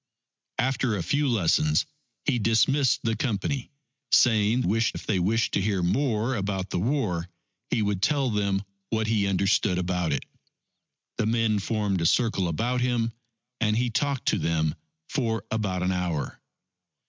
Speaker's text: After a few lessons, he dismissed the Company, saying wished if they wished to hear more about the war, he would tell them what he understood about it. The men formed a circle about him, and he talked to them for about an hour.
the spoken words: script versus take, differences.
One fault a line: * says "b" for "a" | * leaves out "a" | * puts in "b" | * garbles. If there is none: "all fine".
all fine